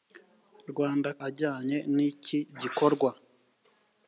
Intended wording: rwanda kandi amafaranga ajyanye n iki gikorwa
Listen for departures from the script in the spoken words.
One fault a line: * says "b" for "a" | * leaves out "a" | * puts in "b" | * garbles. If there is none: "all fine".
* leaves out "kandi amafaranga"